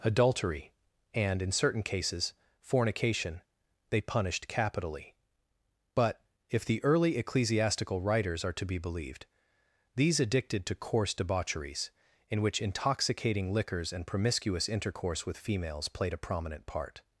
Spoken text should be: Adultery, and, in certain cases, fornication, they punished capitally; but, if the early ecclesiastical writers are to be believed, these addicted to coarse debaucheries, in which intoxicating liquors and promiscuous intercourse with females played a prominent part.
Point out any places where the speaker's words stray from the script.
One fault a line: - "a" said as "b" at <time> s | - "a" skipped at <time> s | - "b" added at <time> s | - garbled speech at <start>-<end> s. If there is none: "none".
none